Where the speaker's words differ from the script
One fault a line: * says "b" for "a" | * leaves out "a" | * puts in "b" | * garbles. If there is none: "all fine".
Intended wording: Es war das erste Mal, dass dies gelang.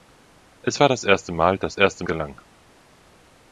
* says "erste" for "dies"